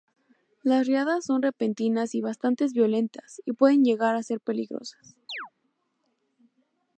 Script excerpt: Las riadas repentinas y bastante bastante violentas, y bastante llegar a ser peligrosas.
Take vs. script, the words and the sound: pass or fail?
fail